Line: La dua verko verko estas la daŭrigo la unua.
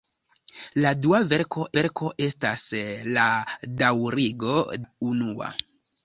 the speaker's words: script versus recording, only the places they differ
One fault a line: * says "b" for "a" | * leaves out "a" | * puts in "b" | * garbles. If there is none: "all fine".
all fine